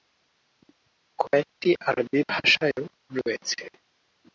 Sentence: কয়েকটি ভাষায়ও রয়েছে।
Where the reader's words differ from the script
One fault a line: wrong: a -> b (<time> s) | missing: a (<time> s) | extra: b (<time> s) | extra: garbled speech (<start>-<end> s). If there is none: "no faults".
extra: আরবি (1.9 s)